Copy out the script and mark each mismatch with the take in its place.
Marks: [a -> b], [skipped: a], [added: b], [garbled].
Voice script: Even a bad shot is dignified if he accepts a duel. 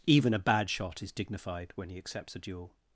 Even a bad shot is dignified [if -> when] he accepts a duel.